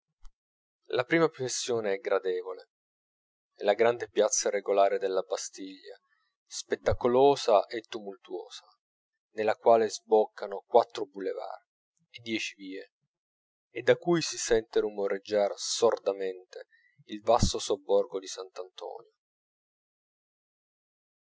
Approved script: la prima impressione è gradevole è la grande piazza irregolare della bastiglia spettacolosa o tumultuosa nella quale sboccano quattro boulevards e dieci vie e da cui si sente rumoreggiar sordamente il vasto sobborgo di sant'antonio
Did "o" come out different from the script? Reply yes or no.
yes